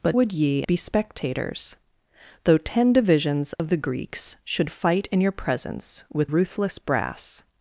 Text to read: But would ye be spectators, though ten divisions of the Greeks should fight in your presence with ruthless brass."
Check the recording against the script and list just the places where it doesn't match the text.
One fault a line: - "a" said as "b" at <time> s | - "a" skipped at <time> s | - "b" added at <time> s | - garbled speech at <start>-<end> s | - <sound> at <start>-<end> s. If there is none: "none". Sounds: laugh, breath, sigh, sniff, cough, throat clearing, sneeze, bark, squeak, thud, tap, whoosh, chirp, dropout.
- dropout at 3.6-3.6 s